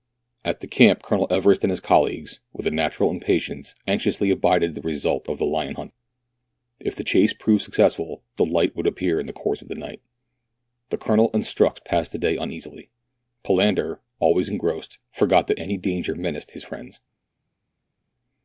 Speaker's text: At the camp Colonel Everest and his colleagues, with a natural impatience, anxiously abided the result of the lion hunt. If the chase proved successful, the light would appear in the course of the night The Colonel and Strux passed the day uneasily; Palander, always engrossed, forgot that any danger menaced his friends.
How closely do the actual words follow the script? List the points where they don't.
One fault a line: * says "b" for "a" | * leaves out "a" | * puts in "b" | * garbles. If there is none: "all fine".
all fine